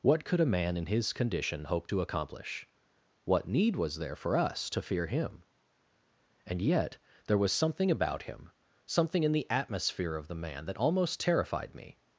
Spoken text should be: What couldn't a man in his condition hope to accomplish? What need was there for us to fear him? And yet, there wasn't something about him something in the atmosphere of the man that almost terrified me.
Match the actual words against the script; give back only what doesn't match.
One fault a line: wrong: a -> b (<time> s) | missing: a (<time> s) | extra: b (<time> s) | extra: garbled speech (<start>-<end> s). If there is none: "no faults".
wrong: couldn't -> could (0.2 s)
wrong: wasn't -> was (7.4 s)